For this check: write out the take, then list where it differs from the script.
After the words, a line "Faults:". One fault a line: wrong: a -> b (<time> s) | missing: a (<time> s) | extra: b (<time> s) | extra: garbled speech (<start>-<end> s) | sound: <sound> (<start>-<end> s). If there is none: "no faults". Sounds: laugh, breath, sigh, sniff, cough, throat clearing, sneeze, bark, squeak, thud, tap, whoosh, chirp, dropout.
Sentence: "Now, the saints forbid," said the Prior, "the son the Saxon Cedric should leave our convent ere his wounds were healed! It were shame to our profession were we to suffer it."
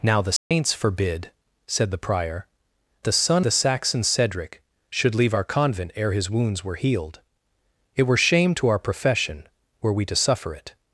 "Now, the saints forbid," said the Prior, "the son the Saxon Cedric should leave our convent ere his wounds were healed! It were shame to our profession were we to suffer it."
Faults:
sound: dropout (0.4-0.5 s)